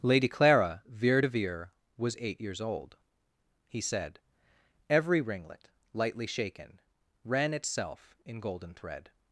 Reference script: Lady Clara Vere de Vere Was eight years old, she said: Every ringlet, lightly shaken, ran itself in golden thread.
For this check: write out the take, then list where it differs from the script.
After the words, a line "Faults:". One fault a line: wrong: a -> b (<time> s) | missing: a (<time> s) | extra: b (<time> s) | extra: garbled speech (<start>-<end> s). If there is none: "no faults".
Lady Clara Vere de Vere Was eight years old, he said: Every ringlet, lightly shaken, ran itself in golden thread.
Faults:
wrong: she -> he (3.7 s)